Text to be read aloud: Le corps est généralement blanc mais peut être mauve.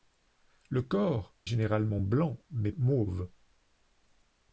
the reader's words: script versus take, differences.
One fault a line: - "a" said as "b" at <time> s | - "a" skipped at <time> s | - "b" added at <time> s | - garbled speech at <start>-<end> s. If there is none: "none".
- "est" skipped at 1.4 s
- "peut être" skipped at 2.7 s